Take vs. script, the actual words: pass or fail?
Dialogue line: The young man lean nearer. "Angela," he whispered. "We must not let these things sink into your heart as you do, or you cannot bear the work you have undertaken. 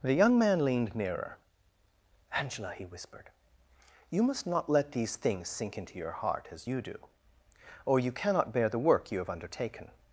fail